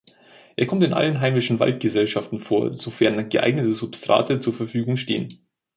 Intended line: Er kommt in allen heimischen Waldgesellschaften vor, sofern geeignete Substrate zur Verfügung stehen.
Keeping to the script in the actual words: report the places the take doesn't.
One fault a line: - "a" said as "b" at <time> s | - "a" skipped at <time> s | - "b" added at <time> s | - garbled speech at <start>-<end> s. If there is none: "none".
none